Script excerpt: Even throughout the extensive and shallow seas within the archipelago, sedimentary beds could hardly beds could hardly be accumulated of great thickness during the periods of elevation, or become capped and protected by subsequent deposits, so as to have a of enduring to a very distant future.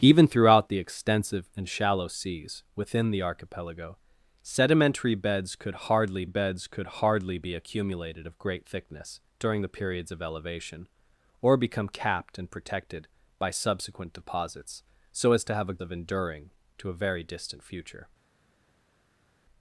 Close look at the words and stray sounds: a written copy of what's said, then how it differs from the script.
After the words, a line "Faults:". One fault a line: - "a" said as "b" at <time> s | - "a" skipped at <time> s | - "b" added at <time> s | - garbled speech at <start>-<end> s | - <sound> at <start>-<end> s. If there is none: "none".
Even throughout the extensive and shallow seas within the archipelago, sedimentary beds could hardly beds could hardly be accumulated of great thickness during the periods of elevation, or become capped and protected by subsequent deposits, so as to have a of enduring to a very distant future.
Faults:
none